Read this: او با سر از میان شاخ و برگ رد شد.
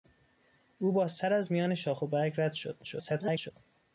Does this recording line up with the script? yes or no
no